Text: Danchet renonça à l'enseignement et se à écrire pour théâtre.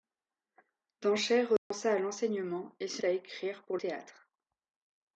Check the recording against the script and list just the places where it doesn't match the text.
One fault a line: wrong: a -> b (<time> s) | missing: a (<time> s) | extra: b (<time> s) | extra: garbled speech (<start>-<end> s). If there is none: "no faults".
no faults